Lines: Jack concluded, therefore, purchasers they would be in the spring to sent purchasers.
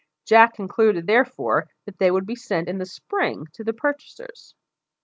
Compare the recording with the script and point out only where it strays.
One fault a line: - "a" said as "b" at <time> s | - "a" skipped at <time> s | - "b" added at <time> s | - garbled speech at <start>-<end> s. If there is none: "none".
- "purchasers" said as "that" at 1.9 s
- "sent" added at 2.4 s
- "sent" said as "the" at 3.6 s